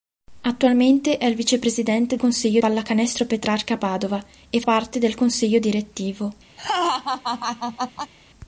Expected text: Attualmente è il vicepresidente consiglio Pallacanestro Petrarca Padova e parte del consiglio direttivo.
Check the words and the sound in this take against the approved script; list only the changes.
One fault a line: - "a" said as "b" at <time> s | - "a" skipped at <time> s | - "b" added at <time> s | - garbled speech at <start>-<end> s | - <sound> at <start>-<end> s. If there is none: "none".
- laugh at 6.6-8.1 s